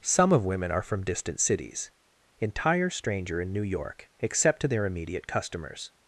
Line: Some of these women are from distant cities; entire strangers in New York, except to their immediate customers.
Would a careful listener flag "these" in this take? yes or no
yes